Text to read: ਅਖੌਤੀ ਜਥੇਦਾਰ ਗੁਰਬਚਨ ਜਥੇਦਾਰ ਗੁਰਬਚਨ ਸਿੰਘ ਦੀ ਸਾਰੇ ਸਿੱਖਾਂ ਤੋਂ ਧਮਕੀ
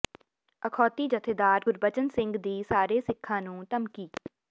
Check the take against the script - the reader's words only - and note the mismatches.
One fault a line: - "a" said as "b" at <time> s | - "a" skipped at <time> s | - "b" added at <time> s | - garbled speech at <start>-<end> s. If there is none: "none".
- "ਜਥੇਦਾਰ ਗੁਰਬਚਨ" skipped at 2.1 s
- "ਤੋਂ" said as "ਨੂੰ" at 3.4 s